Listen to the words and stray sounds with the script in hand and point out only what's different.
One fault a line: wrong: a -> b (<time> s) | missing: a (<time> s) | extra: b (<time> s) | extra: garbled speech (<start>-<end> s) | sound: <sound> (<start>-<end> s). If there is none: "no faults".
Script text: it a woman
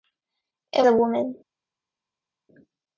no faults